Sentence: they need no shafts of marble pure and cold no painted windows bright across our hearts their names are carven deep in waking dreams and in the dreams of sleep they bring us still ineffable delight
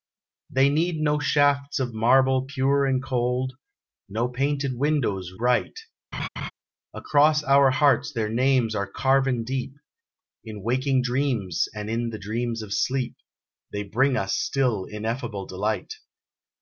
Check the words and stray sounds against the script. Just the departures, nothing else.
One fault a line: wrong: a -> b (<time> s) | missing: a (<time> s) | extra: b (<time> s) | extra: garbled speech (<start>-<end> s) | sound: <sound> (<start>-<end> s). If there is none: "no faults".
sound: laugh (6.1-6.5 s)